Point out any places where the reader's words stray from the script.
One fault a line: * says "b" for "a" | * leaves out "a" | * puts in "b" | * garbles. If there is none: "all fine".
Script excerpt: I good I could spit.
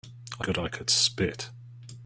all fine